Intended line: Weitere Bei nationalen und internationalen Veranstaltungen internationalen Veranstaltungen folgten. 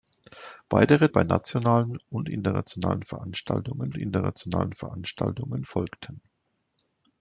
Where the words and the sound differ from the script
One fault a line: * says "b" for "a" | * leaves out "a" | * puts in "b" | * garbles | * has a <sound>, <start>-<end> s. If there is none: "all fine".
all fine